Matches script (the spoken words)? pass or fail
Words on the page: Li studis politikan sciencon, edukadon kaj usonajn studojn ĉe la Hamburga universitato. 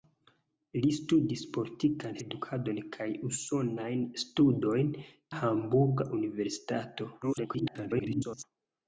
fail